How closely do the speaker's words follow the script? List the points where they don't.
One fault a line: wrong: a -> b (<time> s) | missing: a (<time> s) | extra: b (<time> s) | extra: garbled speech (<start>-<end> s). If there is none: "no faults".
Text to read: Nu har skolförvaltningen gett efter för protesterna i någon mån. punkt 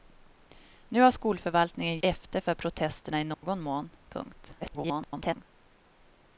missing: gett (2.0 s)
extra: garbled speech (4.6-5.4 s)